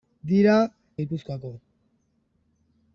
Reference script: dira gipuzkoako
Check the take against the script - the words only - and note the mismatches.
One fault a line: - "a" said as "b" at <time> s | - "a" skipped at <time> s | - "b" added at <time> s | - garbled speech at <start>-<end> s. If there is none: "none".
none